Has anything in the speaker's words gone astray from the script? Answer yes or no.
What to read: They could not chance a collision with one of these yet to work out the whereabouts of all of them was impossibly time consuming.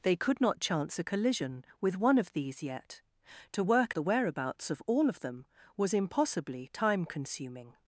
yes